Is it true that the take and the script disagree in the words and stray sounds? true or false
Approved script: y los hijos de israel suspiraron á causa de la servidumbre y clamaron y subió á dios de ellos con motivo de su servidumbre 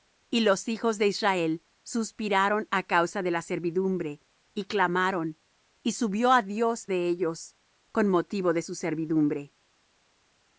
false